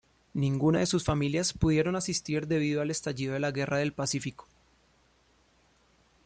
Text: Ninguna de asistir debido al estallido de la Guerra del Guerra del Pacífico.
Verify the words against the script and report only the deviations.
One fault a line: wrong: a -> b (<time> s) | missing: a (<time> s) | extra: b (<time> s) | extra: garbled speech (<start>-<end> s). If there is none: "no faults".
extra: sus familias pudieron (0.9 s)
missing: Guerra del (3.9 s)